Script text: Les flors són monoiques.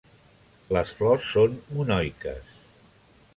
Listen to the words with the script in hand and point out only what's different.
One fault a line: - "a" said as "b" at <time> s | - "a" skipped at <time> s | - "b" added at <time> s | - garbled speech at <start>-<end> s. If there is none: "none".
none